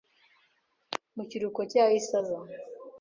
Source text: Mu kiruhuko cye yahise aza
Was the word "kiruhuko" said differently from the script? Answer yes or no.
no